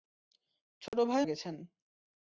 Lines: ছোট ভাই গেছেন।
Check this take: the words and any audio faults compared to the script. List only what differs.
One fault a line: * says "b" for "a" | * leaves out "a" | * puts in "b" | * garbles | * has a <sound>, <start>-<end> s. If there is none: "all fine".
* has a dropout, 0.9-0.9 s